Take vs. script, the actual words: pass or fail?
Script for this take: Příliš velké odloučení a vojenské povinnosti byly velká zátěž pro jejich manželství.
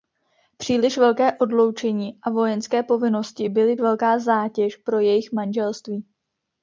pass